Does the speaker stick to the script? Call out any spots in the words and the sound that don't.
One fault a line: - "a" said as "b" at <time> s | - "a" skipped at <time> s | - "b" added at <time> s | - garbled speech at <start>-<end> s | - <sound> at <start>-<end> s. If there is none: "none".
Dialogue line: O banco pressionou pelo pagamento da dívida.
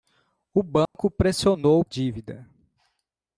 - dropout at 0.9-0.9 s
- "pelo pagamento da" skipped at 1.9 s